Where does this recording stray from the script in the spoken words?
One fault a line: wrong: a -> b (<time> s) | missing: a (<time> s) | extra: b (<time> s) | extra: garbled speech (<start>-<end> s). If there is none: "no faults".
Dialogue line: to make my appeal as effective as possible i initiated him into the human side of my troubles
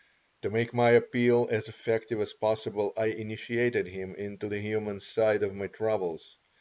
no faults